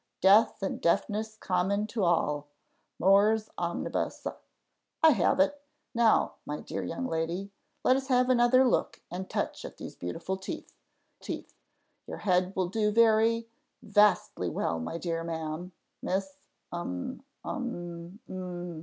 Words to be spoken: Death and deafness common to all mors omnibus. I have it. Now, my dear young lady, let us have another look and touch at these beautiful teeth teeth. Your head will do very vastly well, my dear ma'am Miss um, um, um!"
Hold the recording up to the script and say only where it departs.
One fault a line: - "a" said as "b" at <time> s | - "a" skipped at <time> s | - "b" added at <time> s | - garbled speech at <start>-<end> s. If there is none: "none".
none